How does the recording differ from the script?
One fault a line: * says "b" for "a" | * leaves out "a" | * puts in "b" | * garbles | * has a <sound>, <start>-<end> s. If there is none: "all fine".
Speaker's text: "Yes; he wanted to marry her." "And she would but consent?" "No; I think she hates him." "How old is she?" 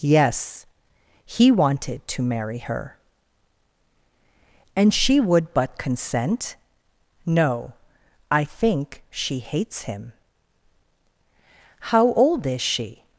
all fine